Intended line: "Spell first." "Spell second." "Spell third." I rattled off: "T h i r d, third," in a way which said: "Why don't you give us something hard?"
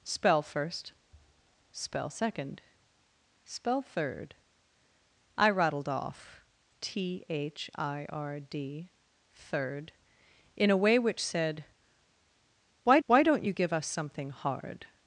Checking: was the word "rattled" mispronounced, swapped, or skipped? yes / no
no